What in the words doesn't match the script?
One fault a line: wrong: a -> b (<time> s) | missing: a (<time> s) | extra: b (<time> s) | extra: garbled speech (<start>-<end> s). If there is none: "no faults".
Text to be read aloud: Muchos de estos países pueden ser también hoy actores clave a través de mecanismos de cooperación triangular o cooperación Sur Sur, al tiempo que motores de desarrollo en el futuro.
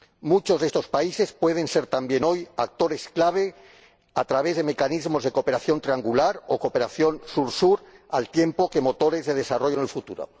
no faults